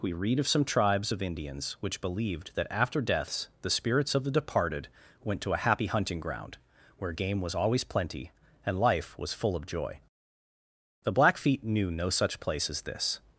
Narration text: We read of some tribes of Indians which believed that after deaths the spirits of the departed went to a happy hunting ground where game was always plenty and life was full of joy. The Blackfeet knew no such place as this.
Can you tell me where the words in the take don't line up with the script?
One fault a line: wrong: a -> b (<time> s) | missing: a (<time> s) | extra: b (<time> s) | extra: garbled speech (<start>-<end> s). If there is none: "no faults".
no faults